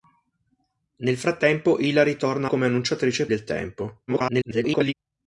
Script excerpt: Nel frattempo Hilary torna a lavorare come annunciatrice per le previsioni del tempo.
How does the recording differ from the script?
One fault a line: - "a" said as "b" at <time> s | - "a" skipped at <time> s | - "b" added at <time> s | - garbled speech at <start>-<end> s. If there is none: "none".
- "lavorare" skipped at 2.5 s
- "per le previsioni" skipped at 3.3 s
- garbled speech at 4.1-4.9 s